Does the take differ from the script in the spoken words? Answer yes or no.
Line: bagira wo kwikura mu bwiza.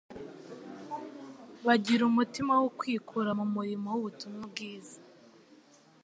yes